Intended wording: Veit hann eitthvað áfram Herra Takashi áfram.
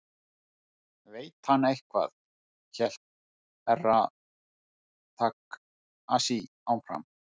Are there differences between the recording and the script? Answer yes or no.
yes